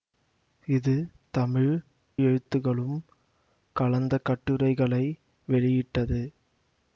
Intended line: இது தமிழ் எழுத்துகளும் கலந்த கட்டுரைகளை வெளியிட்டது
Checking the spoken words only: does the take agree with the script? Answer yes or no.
yes